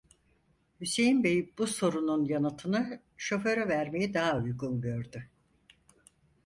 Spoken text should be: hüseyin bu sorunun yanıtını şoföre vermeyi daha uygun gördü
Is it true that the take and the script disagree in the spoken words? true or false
true